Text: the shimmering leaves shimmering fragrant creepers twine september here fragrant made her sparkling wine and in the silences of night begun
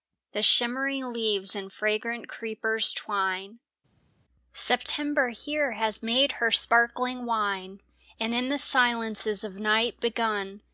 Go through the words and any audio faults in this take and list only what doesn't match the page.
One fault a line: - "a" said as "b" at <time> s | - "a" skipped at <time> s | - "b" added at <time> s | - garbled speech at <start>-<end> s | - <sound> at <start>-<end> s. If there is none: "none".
- "shimmering" said as "and" at 1.6 s
- "fragrant" said as "has" at 5.7 s